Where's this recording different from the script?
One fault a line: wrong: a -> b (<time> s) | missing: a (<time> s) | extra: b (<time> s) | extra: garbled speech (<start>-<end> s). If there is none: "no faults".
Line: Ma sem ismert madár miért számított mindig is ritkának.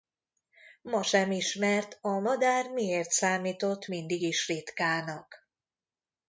extra: a (2.0 s)